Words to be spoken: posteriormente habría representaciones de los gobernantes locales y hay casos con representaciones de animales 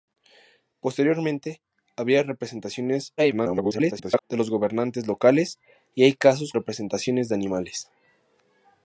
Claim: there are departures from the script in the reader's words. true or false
true